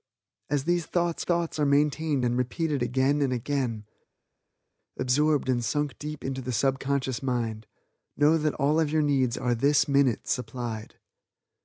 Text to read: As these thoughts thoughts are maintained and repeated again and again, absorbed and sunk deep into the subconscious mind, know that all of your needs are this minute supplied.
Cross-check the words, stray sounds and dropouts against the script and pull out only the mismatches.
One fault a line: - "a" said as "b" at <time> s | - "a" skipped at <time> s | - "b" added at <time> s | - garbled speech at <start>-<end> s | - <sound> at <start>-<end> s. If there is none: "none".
none